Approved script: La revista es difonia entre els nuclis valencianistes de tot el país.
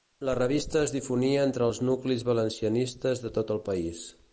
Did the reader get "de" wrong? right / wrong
right